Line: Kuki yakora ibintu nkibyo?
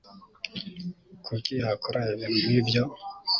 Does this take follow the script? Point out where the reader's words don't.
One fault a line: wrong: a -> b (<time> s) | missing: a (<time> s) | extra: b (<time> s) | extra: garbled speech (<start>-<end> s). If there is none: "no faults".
no faults